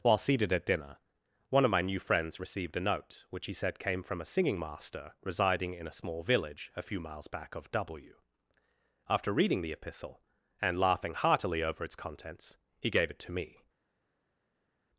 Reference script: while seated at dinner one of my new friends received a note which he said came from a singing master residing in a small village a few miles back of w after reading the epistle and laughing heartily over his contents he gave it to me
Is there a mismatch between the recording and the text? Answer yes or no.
yes